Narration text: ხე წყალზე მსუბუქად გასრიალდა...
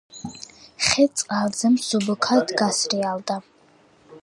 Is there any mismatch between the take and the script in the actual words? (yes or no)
no